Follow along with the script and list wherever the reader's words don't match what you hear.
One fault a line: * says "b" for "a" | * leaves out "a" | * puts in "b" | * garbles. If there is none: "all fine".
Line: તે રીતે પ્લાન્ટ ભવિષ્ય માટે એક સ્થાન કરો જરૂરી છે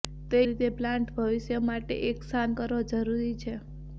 all fine